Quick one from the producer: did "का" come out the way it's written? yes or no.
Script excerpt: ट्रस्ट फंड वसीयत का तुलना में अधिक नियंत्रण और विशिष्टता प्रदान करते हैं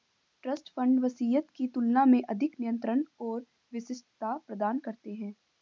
no